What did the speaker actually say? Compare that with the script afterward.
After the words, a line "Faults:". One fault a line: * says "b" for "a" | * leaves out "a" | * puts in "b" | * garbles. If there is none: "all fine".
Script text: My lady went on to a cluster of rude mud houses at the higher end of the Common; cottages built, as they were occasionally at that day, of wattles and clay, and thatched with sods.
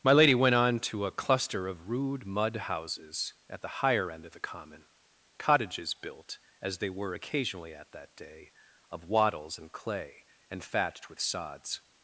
My lady went on to a cluster of rude mud houses at the higher end of the Common; cottages built, as they were occasionally at that day, of wattles and clay, and thatched with sods.
Faults:
all fine